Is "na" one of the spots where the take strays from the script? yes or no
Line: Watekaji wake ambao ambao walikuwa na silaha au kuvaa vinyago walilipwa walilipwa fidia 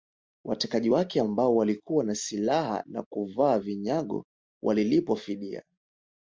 no